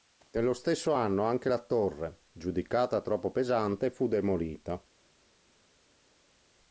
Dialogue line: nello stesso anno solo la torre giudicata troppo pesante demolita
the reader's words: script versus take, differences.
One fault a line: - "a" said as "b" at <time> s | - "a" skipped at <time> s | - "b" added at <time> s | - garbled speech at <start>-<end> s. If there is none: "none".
- "solo" said as "anche" at 1.2 s
- "fu" added at 3.9 s